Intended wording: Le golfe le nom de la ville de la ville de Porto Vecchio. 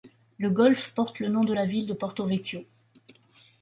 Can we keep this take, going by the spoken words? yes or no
no